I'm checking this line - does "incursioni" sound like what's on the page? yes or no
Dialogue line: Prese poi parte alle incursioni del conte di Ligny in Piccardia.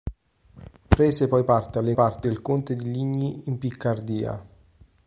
no